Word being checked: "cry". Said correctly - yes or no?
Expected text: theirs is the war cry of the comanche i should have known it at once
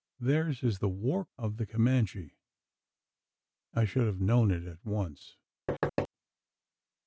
no